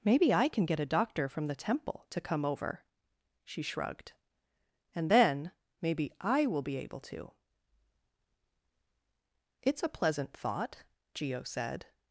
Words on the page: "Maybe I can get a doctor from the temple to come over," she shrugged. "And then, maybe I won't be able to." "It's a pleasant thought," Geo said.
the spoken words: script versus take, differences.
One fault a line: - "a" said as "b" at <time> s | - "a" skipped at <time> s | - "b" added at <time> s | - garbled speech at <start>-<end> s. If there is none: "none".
- "won't" said as "will" at 6.5 s